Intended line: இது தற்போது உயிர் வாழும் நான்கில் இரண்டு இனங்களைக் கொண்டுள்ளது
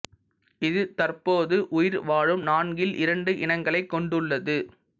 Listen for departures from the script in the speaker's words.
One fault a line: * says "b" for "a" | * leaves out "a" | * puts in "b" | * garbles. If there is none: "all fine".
all fine